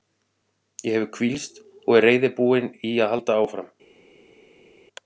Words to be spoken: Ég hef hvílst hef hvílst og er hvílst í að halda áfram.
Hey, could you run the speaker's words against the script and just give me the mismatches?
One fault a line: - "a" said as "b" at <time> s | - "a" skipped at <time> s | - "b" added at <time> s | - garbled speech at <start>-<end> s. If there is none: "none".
- "hef hvílst" skipped at 1.6 s
- "hvílst" said as "reiðubúinn" at 2.1 s